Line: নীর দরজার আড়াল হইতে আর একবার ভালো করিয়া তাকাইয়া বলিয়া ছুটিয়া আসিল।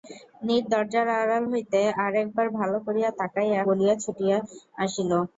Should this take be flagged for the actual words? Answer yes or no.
no